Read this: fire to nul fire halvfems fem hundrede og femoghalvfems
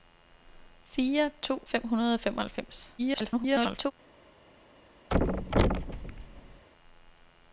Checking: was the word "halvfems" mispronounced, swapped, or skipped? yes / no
yes